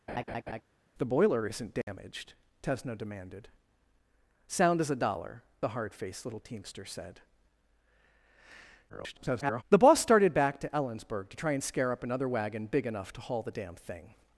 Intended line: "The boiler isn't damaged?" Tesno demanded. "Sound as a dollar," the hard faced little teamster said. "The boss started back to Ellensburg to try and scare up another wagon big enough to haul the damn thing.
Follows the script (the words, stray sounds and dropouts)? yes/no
no